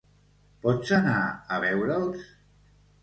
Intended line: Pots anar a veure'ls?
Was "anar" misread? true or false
false